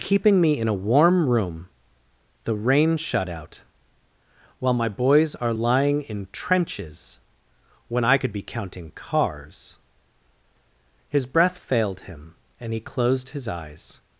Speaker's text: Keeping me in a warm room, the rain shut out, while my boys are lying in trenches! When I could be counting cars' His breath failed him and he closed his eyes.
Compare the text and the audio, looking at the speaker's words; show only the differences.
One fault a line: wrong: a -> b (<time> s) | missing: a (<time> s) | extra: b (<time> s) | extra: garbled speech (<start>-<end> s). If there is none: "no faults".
no faults